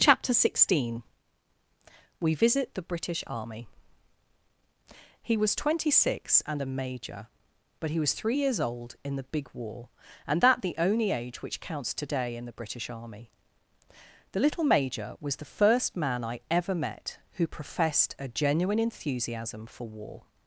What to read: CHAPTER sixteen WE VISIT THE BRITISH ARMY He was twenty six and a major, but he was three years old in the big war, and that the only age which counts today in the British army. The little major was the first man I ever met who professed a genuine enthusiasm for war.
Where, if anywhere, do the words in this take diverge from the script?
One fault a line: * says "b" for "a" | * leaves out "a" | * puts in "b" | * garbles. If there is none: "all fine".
all fine